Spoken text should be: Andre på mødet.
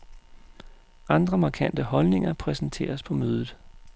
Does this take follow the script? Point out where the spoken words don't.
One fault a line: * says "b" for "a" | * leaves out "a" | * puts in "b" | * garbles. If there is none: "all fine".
* puts in "markante holdninger præsenteres"